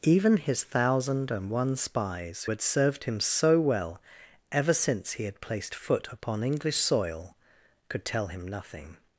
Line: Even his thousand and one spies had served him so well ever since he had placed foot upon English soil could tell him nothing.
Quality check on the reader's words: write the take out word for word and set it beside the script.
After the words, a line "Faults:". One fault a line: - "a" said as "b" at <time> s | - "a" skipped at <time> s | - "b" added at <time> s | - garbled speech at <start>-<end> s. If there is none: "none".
Even his thousand and one spies had served him so well ever since he had placed foot upon English soil could tell him nothing.
Faults:
none